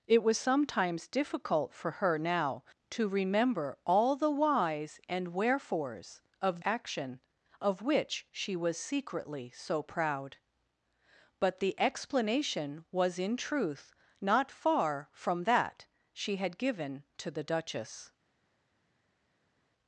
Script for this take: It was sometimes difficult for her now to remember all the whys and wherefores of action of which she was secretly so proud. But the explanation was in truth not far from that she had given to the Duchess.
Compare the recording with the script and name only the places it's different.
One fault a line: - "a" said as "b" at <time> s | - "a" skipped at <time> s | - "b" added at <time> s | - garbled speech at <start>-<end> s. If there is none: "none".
none